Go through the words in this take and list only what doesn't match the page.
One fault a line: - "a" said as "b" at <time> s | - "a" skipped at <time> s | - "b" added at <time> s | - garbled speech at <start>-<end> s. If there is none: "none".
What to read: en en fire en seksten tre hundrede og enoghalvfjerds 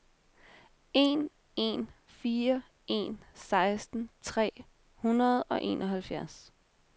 none